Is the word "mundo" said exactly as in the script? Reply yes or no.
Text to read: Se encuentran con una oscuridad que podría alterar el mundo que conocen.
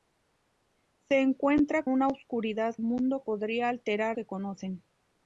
no